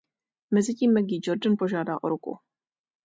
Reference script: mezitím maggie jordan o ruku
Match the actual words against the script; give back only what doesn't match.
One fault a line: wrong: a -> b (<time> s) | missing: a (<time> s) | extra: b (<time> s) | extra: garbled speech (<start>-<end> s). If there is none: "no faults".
extra: požádá (1.6 s)